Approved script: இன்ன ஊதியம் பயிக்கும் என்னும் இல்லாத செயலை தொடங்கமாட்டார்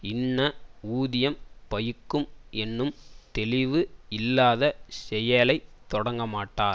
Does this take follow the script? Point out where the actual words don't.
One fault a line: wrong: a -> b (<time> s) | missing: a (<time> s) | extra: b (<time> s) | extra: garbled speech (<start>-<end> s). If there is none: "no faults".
extra: தெளிவு (3.3 s)